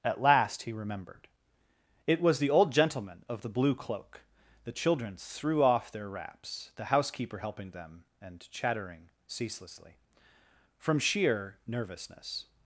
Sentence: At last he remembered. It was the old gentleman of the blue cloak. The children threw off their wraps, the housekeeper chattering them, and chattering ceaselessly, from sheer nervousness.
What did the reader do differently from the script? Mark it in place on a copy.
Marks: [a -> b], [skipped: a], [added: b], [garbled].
At last he remembered. It was the old gentleman of the blue cloak. The children threw off their wraps, the housekeeper [chattering -> helping] them, and chattering ceaselessly, from sheer nervousness.